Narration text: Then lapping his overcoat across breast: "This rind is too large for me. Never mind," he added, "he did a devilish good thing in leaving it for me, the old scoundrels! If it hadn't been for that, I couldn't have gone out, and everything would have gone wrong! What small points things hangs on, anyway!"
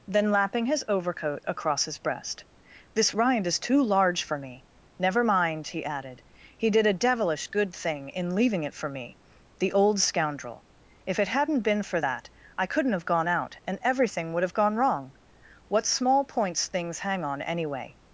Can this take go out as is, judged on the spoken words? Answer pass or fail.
fail